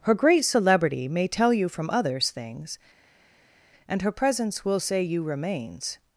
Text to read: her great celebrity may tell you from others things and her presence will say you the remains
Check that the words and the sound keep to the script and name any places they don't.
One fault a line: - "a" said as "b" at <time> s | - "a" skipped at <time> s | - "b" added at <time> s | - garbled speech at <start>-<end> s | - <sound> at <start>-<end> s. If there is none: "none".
- "the" skipped at 5.2 s